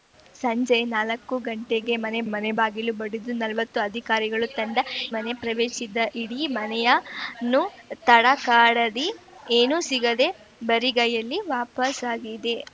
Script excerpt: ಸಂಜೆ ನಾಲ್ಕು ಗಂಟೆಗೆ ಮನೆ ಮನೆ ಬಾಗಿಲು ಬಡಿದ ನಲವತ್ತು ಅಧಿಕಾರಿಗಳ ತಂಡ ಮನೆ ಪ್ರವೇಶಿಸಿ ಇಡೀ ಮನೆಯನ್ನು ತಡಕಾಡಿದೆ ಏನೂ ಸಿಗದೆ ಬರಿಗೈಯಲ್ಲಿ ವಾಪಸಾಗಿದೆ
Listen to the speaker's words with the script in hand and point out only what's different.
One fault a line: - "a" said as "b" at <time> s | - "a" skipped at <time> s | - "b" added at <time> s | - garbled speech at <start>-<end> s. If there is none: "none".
none